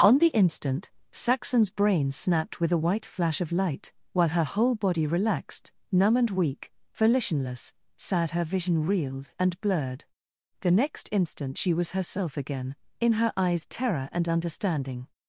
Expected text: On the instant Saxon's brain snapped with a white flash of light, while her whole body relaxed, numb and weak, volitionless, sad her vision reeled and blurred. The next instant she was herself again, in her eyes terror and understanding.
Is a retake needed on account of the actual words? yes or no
no